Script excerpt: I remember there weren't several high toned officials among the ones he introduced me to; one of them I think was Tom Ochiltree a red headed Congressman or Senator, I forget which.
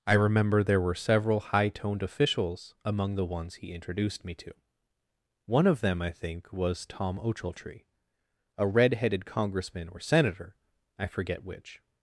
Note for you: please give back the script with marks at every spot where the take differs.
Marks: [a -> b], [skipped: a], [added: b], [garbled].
I remember there [weren't -> were] several high toned officials among the ones he introduced me to; one of them I think was Tom Ochiltree a red headed Congressman or Senator, I forget which.